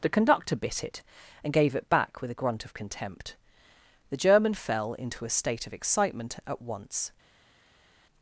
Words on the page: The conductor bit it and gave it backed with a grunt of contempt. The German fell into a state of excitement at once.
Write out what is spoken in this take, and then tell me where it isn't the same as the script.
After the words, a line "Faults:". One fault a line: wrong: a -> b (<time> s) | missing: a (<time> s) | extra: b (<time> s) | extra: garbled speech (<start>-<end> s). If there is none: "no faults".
The conductor bit it and gave it back with a grunt of contempt. The German fell into a state of excitement at once.
Faults:
wrong: backed -> back (1.9 s)